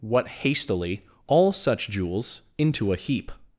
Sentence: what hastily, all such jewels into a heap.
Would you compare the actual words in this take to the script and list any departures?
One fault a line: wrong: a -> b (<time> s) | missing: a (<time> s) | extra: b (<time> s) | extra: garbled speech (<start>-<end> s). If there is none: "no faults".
no faults